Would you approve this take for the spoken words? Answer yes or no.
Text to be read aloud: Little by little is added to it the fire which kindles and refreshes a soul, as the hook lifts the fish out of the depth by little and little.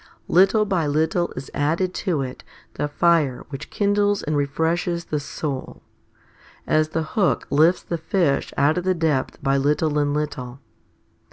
no